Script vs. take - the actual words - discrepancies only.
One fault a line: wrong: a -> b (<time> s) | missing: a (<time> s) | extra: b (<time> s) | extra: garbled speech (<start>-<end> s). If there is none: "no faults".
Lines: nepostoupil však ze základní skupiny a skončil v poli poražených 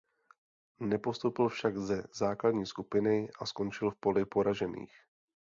no faults